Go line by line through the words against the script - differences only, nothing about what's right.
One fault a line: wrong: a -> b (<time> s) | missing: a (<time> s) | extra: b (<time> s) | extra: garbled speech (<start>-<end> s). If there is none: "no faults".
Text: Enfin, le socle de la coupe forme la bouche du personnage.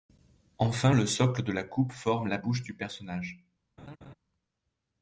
no faults